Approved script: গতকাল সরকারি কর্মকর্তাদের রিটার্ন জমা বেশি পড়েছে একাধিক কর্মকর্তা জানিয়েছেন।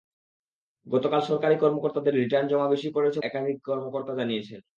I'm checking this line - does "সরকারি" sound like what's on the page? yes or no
yes